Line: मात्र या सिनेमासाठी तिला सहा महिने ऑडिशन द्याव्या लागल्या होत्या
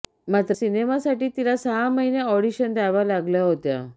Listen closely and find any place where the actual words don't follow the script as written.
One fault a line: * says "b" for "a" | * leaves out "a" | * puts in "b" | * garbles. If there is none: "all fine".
* leaves out "या"